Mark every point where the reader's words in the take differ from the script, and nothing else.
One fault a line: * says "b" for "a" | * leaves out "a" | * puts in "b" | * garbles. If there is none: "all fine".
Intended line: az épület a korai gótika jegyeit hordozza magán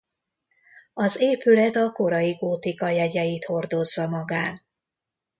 all fine